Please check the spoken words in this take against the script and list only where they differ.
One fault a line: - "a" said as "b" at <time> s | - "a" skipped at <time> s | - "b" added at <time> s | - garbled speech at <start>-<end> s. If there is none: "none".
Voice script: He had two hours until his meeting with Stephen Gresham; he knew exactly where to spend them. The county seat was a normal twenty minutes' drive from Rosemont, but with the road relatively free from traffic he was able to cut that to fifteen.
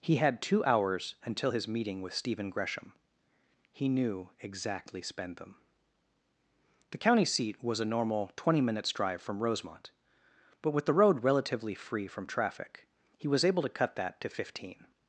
- "where to" skipped at 5.0 s